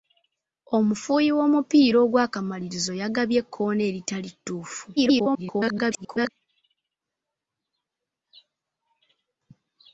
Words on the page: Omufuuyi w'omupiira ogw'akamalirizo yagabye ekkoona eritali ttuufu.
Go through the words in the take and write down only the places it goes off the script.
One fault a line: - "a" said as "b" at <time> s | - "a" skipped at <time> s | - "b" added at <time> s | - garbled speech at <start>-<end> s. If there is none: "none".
- garbled speech at 5.0-6.3 s